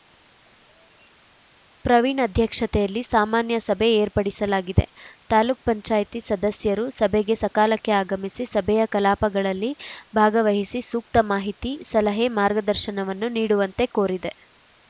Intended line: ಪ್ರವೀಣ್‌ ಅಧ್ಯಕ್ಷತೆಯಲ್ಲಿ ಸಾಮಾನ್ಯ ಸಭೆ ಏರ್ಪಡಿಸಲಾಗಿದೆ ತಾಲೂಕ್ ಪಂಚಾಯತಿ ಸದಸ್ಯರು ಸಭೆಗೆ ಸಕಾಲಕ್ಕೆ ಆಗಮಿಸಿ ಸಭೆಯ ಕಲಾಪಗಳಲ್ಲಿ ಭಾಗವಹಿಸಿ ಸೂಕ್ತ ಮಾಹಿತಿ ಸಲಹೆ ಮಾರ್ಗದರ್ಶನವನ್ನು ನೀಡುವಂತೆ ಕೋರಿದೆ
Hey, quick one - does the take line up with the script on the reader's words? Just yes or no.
yes